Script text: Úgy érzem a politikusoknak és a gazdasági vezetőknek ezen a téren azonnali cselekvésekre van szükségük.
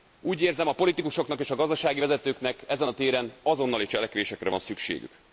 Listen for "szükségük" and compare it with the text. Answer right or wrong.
right